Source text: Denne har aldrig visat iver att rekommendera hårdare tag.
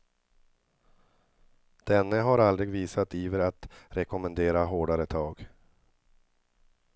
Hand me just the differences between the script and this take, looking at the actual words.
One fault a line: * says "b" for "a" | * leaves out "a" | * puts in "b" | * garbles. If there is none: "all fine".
all fine